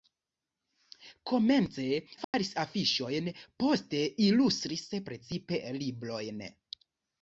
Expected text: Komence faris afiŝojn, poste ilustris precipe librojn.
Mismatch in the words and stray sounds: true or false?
true